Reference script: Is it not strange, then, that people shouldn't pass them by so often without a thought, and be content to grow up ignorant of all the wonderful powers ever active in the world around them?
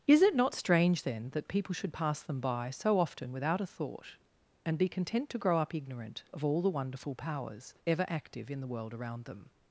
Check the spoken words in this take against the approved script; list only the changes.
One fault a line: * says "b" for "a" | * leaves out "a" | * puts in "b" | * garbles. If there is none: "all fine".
* says "should" for "shouldn't"